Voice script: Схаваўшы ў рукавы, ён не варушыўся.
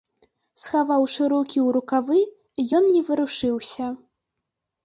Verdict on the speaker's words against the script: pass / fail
fail